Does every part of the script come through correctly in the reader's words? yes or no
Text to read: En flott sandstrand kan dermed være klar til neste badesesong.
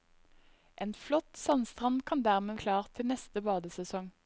no